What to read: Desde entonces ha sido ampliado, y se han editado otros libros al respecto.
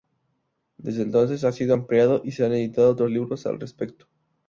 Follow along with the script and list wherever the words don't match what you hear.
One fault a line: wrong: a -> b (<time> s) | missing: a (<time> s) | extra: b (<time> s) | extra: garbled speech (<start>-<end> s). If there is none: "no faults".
no faults